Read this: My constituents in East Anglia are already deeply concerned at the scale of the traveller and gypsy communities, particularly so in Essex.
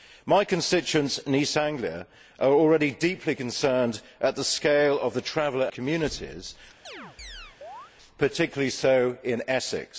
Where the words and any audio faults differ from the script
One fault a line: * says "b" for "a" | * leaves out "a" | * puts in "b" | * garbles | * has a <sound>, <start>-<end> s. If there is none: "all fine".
* leaves out "and gypsy"
* has a chirp, 6.8-7.9 s